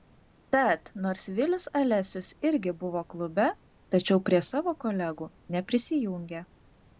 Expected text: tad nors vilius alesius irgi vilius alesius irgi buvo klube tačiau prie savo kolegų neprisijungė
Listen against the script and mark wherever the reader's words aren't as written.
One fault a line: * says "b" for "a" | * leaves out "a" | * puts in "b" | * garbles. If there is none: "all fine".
* leaves out "vilius alesius irgi"